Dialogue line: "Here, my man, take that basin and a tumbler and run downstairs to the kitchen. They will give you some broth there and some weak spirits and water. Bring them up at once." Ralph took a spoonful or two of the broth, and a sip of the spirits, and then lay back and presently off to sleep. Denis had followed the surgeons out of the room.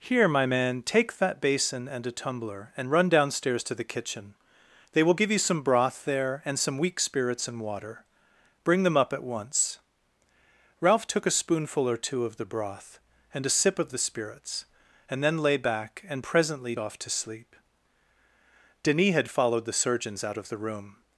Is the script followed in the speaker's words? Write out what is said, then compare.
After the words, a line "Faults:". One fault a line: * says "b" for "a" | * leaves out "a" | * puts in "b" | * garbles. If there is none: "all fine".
"Here, my man, take that basin and a tumbler and run downstairs to the kitchen. They will give you some broth there and some weak spirits and water. Bring them up at once." Ralph took a spoonful or two of the broth, and a sip of the spirits, and then lay back and presently off to sleep. Denis had followed the surgeons out of the room.
Faults:
all fine